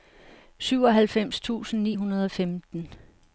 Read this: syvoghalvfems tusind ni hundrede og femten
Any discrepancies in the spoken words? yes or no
no